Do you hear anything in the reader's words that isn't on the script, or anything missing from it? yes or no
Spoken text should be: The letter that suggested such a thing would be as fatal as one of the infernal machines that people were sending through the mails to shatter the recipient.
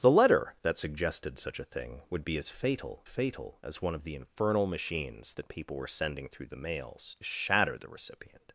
yes